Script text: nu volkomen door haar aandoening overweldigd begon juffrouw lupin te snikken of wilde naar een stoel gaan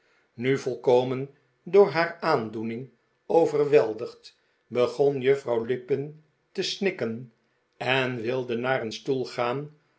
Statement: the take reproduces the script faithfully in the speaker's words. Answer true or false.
false